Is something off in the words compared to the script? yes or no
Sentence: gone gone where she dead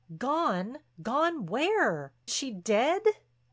no